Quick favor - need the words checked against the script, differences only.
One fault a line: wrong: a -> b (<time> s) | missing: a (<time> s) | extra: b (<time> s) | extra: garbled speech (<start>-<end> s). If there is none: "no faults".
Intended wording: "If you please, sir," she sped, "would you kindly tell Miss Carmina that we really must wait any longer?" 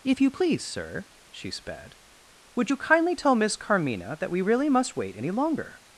no faults